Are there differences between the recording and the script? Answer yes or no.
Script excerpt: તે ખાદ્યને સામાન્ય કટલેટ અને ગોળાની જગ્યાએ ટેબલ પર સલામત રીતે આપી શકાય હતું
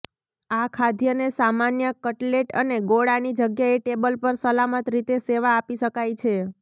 yes